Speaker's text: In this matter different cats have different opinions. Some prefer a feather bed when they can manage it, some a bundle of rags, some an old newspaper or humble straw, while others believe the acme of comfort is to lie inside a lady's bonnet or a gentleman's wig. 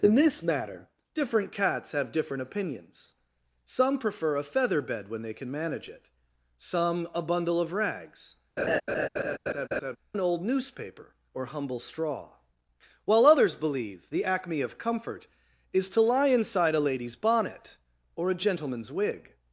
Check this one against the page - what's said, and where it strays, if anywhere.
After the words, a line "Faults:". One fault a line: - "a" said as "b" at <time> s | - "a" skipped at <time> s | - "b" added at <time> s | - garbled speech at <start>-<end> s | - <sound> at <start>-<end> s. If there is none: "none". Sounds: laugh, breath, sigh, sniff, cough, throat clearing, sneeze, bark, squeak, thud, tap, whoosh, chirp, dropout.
In this matter different cats have different opinions. Some prefer a feather bed when they can manage it, some a bundle of rags, an old newspaper or humble straw, while others believe the acme of comfort is to lie inside a lady's bonnet or a gentleman's wig.
Faults:
- "some" skipped at 8.4 s
- laugh at 8.6-10.0 s